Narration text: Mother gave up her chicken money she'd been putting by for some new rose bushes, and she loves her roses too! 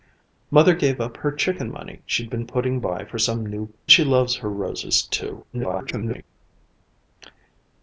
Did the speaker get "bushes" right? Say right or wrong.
wrong